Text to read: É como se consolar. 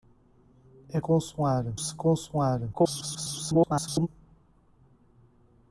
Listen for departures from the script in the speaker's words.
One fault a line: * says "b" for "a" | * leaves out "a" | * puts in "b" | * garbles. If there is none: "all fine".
* says "consolar" for "como"
* garbles